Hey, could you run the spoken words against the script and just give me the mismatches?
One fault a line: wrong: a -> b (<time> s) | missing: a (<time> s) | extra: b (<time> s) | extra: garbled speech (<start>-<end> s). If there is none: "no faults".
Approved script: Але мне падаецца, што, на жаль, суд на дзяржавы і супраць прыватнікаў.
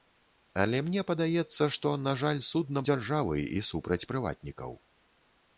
no faults